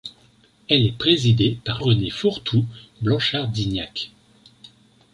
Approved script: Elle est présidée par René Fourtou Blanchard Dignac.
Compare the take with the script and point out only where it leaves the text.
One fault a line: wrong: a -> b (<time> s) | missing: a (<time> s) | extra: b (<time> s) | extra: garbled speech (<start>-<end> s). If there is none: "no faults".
no faults